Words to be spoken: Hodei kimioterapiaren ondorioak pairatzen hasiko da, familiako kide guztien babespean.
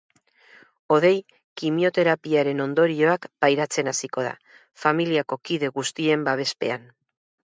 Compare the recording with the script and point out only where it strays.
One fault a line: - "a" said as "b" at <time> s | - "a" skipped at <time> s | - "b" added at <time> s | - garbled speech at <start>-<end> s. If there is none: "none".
none